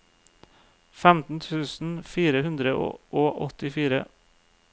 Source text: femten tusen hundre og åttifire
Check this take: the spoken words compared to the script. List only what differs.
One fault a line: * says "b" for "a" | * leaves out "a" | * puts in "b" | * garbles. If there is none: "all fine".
* puts in "fire"